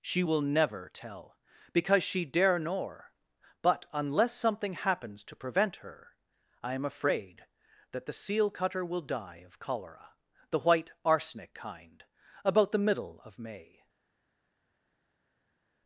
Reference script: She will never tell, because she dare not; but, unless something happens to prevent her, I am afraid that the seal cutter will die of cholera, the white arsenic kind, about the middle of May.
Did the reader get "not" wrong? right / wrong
wrong